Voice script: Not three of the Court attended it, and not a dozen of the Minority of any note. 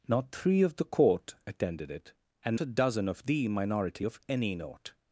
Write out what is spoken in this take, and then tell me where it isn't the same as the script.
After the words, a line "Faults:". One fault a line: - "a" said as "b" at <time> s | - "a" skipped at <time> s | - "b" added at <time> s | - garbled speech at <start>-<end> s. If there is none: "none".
Not three of the Court attended it, and a dozen of the Minority of any note.
Faults:
- "not" skipped at 2.6 s